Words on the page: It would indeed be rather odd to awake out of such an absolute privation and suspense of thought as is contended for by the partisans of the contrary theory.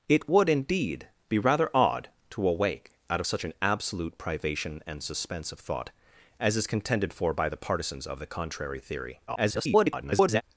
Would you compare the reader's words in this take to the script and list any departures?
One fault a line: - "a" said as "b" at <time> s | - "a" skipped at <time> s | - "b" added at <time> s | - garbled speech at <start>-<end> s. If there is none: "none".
- garbled speech at 9.3-10.4 s